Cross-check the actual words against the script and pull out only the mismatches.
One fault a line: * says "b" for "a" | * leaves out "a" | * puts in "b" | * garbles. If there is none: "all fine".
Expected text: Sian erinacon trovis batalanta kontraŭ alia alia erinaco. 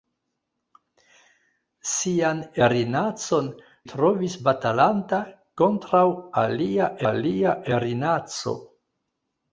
all fine